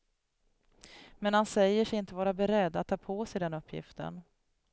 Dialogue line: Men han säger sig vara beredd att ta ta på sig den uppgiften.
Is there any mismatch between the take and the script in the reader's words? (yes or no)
yes